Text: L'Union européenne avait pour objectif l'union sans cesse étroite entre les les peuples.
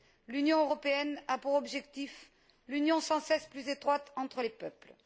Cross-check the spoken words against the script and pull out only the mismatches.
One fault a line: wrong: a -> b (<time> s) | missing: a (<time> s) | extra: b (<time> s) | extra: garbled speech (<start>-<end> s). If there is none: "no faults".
wrong: avait -> a (1.3 s)
extra: plus (3.5 s)
missing: les (4.5 s)